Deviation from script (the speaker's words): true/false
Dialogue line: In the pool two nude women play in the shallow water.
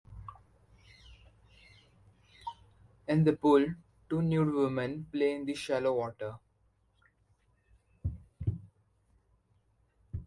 false